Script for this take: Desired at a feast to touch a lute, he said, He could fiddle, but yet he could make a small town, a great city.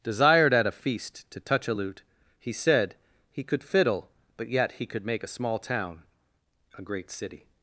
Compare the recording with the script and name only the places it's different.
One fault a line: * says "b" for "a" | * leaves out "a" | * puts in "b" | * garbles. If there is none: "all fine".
all fine